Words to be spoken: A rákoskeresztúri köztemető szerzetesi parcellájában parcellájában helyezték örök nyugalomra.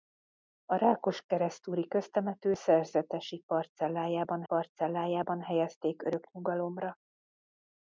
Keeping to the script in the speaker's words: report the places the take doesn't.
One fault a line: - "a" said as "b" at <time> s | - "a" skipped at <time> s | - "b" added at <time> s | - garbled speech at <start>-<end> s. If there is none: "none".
none